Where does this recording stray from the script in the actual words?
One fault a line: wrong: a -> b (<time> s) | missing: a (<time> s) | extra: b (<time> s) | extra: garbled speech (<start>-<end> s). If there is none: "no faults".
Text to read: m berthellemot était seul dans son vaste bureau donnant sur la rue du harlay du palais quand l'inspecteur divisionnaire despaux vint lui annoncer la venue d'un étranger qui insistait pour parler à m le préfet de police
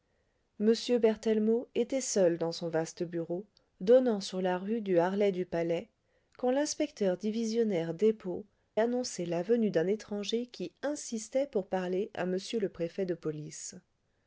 missing: vint lui (8.5 s)